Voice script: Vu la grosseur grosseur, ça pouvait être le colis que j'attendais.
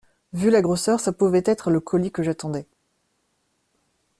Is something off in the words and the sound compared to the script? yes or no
yes